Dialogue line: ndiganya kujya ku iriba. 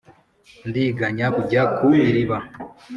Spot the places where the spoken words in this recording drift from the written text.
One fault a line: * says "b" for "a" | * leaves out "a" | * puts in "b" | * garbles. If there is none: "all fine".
all fine